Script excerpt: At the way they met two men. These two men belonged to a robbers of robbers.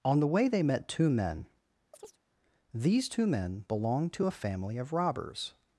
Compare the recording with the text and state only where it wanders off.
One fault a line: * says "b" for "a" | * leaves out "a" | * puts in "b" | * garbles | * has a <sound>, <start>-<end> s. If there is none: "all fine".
* says "On" for "At"
* has a chirp, 1.9-2.2 s
* says "family" for "robbers"